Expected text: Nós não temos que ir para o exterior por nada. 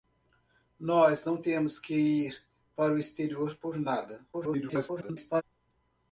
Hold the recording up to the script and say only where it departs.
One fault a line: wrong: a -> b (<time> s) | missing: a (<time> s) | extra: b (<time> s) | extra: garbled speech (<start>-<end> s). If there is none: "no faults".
extra: garbled speech (4.3-5.4 s)